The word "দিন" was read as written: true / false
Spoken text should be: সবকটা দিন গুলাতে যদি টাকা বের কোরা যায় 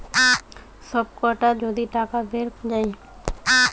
false